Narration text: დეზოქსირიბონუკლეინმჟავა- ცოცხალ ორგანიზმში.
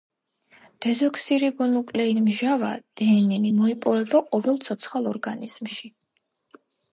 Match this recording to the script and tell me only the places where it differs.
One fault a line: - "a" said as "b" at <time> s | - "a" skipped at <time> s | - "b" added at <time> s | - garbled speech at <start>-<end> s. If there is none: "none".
- "დნმ მოიპოვება ყოველ" added at 3.0 s